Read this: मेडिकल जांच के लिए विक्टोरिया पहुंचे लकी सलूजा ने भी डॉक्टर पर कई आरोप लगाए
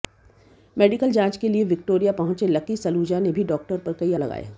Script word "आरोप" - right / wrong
wrong